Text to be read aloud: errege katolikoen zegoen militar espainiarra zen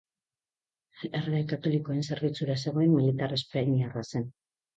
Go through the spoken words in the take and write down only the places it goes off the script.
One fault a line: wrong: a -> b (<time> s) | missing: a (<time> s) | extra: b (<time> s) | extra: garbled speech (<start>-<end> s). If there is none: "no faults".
extra: zerbitzura (2.1 s)